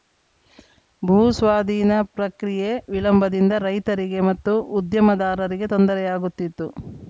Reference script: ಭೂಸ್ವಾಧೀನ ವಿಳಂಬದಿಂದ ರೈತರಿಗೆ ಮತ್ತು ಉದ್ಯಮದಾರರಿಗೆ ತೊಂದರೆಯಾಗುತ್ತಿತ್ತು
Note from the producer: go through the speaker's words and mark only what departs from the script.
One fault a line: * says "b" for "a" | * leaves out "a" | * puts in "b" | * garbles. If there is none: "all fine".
* puts in "ಪ್ರಕ್ರಿಯೆ"